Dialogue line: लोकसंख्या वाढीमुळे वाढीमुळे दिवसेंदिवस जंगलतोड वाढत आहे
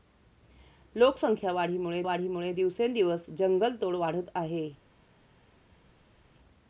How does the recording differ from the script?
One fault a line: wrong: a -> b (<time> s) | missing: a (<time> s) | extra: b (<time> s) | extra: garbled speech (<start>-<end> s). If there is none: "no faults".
no faults